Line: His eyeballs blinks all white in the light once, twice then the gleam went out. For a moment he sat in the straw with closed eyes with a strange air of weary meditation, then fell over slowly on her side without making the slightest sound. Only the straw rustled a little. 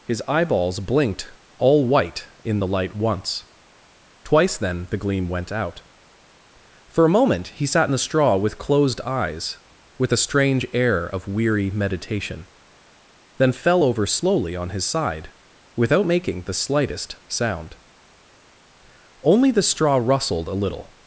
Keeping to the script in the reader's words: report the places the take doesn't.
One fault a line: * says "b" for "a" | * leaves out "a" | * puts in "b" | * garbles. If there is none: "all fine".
* says "blinked" for "blinks"
* says "his" for "her"